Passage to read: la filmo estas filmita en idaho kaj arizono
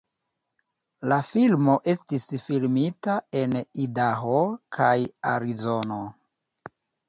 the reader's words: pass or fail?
fail